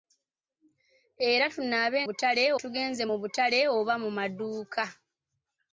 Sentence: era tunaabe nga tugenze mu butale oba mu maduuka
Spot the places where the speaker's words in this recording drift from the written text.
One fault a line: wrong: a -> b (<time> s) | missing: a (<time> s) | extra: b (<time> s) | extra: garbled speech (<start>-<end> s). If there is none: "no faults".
wrong: nga -> butale (2.0 s)